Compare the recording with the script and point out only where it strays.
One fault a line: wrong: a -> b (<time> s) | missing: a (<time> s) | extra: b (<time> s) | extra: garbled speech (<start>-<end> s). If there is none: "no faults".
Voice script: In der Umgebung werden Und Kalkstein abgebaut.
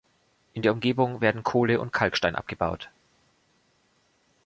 extra: Kohle (1.4 s)